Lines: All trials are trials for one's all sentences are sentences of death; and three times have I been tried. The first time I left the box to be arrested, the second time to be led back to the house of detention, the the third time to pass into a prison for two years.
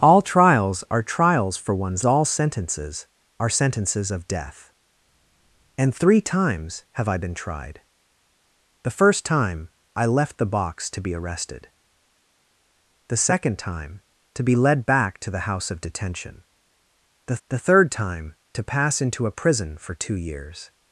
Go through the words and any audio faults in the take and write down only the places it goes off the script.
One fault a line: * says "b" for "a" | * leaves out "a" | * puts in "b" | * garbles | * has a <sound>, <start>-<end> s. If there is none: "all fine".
all fine